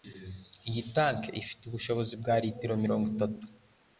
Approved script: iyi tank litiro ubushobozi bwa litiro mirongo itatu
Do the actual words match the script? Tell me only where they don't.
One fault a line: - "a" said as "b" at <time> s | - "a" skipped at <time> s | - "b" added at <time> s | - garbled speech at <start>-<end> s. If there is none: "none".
- "litiro" said as "ifite" at 1.4 s